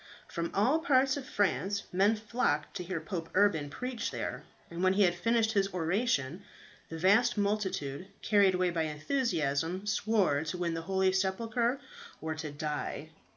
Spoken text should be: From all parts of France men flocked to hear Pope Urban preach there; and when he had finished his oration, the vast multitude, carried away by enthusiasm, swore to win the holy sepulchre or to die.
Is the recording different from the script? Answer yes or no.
no